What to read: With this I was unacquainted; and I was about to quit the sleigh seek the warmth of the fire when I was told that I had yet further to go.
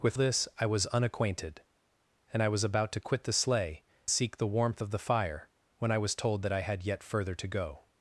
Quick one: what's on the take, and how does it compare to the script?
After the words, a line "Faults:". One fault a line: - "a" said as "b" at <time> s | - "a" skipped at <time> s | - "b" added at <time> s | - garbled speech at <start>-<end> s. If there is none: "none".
With this I was unacquainted; and I was about to quit the sleigh seek the warmth of the fire when I was told that I had yet further to go.
Faults:
none